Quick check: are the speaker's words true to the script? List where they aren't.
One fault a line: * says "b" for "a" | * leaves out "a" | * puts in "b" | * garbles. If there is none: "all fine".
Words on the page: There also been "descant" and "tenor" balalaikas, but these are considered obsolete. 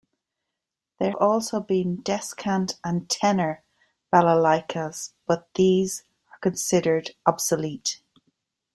all fine